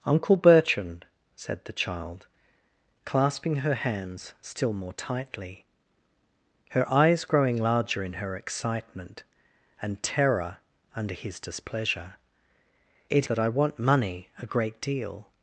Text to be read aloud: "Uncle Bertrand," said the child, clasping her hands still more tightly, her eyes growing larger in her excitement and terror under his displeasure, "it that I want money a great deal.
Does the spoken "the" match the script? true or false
true